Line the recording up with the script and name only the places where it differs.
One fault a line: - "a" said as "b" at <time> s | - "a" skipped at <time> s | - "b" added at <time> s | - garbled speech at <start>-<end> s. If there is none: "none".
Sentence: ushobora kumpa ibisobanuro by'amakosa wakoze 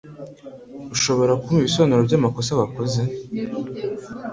none